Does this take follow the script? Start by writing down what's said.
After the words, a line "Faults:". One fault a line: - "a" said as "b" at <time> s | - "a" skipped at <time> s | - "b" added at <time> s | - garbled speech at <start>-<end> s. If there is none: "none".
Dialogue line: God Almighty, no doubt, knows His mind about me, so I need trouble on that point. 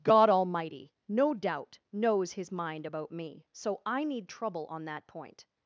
God Almighty, no doubt, knows His mind about me, so I need trouble on that point.
Faults:
none